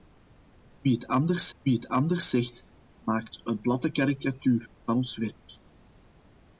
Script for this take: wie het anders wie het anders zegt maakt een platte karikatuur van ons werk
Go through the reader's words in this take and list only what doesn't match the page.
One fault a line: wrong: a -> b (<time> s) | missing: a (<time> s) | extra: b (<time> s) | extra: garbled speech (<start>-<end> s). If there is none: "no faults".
no faults